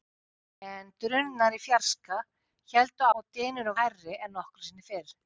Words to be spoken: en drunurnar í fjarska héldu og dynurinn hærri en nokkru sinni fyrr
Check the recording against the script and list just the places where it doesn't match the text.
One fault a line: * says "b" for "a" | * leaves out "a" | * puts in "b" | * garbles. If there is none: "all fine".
all fine